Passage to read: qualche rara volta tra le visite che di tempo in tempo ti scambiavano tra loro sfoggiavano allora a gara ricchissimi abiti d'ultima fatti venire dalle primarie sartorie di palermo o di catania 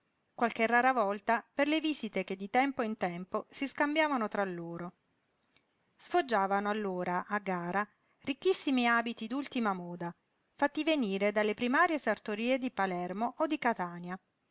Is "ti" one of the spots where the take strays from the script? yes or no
yes